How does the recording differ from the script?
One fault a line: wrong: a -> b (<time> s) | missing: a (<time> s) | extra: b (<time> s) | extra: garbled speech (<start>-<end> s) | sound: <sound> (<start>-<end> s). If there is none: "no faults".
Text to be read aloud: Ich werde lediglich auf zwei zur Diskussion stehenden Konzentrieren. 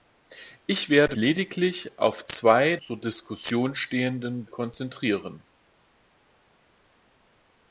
no faults